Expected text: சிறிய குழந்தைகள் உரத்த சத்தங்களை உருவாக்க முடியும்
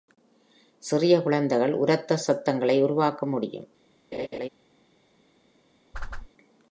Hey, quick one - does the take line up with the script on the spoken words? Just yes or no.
yes